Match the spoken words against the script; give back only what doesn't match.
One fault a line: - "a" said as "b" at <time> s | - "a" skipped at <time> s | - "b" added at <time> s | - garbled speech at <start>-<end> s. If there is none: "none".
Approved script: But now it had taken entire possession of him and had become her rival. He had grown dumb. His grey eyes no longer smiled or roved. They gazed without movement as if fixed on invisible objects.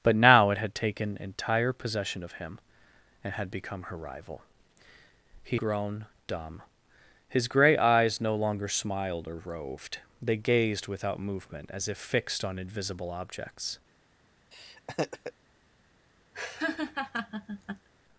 - "had" skipped at 5.6 s